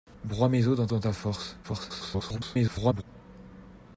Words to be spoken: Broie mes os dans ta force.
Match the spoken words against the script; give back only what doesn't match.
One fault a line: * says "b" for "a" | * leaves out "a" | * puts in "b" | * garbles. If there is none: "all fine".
* puts in "dans"
* garbles